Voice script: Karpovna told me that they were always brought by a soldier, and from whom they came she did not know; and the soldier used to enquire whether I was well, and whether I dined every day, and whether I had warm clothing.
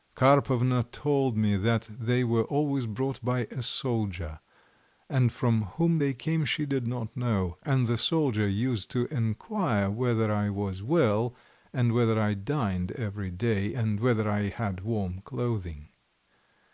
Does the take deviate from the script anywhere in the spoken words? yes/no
no